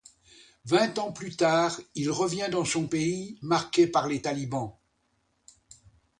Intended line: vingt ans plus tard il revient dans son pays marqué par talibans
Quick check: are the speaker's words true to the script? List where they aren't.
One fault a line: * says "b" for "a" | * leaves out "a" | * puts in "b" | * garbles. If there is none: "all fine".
* puts in "les"